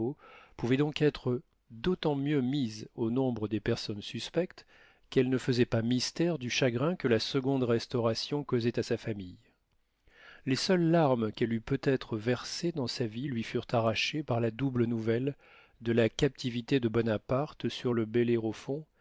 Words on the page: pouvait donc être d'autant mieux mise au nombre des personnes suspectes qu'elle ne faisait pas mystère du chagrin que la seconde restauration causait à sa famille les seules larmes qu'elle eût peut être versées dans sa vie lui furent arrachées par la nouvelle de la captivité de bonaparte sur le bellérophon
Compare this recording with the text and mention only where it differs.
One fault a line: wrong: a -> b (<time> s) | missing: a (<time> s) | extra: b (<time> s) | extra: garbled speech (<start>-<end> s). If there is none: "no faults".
extra: double (14.5 s)